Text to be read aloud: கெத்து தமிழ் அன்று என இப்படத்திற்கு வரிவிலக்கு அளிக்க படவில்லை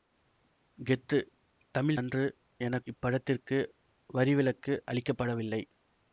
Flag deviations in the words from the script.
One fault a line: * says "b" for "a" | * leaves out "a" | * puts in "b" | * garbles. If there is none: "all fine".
all fine